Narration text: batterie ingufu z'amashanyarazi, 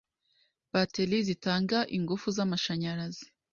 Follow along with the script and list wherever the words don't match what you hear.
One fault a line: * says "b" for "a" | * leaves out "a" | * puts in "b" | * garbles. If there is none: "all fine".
* puts in "zitanga"